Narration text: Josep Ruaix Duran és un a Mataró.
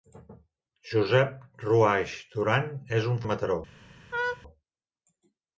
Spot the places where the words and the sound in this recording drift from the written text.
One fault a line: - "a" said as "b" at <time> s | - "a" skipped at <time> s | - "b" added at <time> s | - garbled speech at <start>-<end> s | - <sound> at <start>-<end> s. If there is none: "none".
- laugh at 4.1-4.4 s